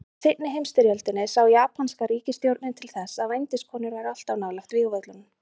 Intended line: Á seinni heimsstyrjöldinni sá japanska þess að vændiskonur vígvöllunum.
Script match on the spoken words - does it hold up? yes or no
no